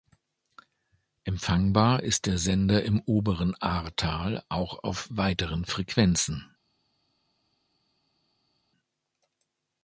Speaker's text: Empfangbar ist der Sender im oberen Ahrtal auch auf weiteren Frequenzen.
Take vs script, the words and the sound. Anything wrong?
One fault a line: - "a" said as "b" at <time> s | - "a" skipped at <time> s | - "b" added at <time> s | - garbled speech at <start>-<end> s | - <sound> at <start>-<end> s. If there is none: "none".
none